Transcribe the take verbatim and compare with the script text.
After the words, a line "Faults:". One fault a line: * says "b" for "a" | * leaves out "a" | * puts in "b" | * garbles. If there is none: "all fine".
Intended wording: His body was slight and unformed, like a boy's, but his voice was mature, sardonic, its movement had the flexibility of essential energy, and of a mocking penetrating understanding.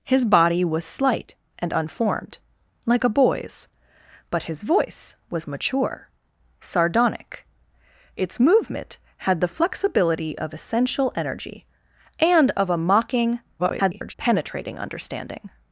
His body was slight and unformed, like a boy's, but his voice was mature, sardonic, its movement had the flexibility of essential energy, and of a mocking [garbled] penetrating understanding.
Faults:
* garbles